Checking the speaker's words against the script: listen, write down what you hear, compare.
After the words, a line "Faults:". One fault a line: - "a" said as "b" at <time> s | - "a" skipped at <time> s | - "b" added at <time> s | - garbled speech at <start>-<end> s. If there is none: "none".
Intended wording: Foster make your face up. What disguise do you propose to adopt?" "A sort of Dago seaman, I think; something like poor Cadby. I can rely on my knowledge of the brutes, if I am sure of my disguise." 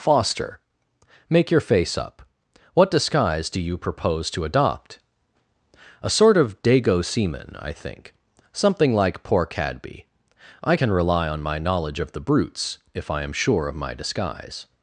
Foster make your face up. What disguise do you propose to adopt?" "A sort of Dago seaman, I think; something like poor Cadby. I can rely on my knowledge of the brutes, if I am sure of my disguise."
Faults:
none